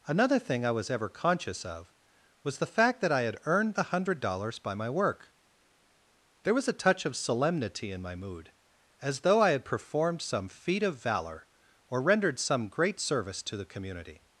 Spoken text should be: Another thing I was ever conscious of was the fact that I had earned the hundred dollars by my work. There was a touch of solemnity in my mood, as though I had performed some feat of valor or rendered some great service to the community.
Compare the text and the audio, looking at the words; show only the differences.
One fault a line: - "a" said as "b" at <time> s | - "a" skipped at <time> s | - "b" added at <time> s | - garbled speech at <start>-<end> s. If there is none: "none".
none